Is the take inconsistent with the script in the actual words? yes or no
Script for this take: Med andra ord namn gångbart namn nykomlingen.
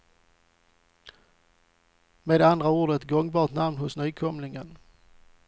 yes